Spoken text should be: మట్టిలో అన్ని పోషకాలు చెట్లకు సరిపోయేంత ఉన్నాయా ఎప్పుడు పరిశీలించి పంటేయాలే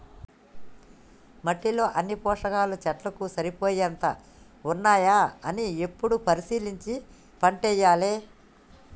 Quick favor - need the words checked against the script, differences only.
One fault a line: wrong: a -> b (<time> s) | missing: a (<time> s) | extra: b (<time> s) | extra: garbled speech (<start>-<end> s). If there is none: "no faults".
extra: అని (5.5 s)